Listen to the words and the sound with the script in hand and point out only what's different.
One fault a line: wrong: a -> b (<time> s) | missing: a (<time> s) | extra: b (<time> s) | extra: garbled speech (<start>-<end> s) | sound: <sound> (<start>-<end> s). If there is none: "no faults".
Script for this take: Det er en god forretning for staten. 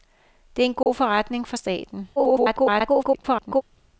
sound: dropout (0.8-0.9 s)
extra: garbled speech (2.2-3.6 s)